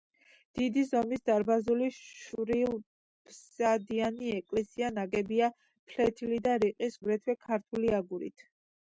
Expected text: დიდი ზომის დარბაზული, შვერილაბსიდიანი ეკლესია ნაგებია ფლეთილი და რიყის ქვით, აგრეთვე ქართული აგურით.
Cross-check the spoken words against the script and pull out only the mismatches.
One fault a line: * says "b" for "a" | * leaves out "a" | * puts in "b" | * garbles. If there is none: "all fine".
* leaves out "ქვით"